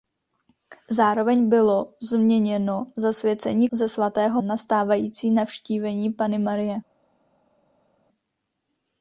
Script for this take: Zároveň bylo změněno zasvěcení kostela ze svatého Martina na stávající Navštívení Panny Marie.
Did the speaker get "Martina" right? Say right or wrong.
wrong